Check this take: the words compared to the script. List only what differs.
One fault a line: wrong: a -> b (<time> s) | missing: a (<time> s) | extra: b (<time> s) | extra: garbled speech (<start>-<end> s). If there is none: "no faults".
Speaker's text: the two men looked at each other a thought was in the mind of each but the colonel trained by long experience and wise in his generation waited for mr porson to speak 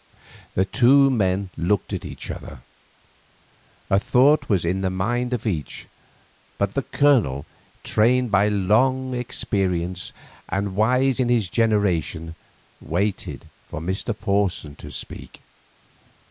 no faults